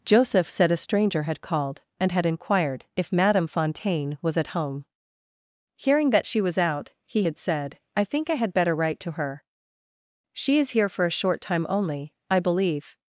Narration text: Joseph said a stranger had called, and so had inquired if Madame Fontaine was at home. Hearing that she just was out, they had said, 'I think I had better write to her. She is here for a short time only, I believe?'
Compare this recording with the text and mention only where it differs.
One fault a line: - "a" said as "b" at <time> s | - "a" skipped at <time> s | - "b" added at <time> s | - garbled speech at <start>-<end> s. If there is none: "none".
- "so" skipped at 2.1 s
- "just" skipped at 6.4 s
- "they" said as "he" at 7.0 s